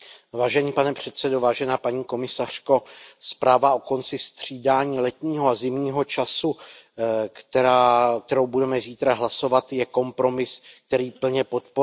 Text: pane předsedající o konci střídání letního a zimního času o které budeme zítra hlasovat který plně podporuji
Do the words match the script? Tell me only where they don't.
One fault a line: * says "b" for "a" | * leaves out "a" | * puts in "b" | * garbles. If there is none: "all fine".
* puts in "paní komisařko zpráva"
* puts in "je kompromis"